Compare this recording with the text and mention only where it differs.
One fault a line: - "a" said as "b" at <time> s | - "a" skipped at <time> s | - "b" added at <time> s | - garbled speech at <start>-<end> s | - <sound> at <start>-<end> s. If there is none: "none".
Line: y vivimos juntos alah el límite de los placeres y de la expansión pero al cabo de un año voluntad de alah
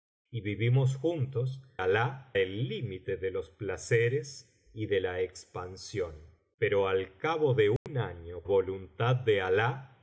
- dropout at 7.8-7.9 s